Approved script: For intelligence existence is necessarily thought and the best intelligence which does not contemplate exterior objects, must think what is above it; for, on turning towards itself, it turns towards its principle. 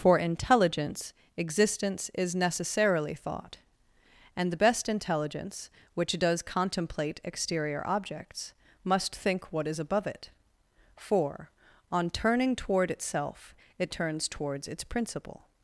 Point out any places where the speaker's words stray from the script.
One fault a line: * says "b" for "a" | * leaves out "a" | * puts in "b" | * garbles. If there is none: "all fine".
* leaves out "not"
* says "toward" for "towards"